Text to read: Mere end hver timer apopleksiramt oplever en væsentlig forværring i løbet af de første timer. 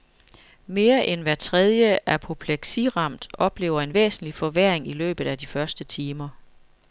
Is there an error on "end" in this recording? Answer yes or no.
no